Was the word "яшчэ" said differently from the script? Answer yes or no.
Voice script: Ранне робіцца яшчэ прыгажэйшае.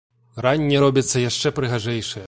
no